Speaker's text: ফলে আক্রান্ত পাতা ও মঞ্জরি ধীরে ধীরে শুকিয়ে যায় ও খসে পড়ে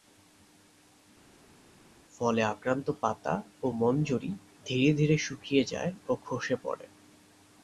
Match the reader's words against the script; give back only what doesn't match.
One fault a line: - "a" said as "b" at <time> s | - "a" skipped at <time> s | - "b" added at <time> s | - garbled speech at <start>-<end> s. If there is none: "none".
none